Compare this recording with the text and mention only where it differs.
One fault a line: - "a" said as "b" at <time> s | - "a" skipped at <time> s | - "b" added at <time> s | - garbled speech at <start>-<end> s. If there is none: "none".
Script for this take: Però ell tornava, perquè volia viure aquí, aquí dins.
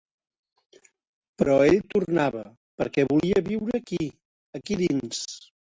none